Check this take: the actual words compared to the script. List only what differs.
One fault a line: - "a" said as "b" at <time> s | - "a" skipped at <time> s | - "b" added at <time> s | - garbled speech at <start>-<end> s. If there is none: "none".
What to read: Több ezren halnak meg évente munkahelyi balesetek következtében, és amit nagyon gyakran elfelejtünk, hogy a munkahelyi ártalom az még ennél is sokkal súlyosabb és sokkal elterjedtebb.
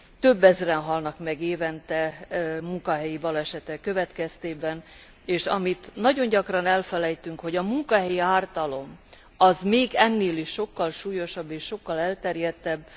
none